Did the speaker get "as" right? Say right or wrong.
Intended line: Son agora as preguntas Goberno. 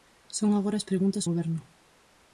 right